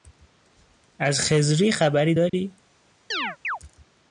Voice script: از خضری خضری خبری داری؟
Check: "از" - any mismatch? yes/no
no